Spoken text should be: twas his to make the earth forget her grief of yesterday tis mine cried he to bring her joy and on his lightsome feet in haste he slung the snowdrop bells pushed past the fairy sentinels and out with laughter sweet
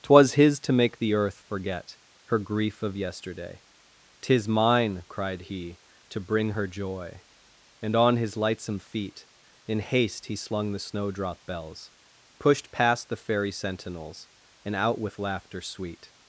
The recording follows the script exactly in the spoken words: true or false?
true